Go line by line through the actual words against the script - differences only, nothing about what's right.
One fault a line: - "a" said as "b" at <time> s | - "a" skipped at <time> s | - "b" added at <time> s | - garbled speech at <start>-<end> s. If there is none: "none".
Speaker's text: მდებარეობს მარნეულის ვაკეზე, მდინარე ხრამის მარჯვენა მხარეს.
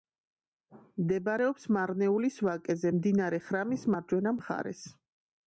none